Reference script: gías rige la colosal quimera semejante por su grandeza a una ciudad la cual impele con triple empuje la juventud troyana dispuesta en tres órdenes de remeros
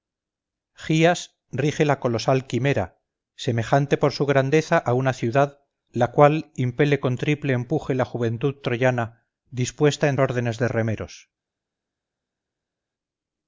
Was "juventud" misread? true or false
false